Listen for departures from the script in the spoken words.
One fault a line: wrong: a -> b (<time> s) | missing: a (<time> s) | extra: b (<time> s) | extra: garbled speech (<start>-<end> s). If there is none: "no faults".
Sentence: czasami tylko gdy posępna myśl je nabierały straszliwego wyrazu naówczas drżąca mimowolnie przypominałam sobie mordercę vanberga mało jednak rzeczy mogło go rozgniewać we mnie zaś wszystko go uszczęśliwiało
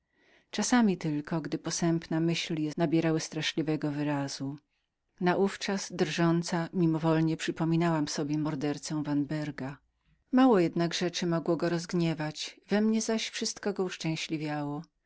no faults